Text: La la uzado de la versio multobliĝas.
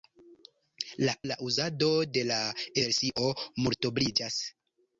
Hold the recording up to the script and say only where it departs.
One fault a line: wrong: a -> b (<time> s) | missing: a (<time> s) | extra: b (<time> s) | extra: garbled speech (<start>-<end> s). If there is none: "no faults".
no faults